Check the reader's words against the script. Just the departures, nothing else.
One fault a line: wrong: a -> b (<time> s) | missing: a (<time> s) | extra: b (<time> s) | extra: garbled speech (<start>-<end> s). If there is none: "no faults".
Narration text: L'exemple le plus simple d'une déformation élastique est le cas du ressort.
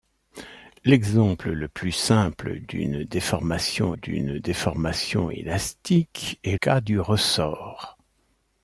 extra: d'une déformation (3.9 s)
missing: le (6.6 s)